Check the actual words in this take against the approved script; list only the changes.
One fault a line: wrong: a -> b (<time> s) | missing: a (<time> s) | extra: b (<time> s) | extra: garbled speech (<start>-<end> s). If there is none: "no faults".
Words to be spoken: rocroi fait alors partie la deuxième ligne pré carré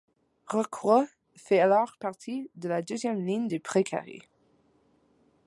extra: de (2.5 s)
extra: du (3.5 s)